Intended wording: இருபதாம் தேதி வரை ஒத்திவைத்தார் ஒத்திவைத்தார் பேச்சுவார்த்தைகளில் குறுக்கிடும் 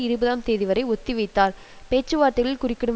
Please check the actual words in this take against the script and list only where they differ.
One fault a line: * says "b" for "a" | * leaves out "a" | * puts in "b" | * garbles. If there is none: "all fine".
* leaves out "ஒத்திவைத்தார்"